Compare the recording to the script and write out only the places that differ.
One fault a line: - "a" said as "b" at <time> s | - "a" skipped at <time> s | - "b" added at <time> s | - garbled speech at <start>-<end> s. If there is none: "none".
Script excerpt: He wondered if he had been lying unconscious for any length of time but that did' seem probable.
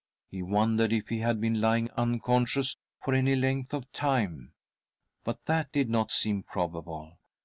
- "not" added at 5.9 s